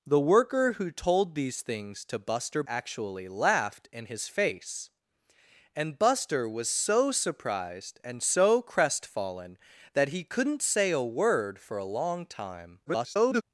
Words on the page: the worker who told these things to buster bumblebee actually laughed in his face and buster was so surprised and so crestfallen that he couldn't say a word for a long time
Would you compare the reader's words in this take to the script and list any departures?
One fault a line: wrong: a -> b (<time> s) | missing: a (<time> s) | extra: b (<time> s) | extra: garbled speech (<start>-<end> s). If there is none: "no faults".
missing: bumblebee (2.6 s)
extra: garbled speech (12.9-13.4 s)